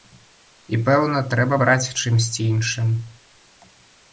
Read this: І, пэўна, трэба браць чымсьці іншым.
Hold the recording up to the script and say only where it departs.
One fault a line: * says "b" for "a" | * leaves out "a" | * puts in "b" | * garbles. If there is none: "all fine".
all fine